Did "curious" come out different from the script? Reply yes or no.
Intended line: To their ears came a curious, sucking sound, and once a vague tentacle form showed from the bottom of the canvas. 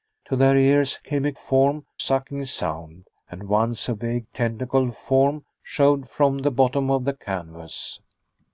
yes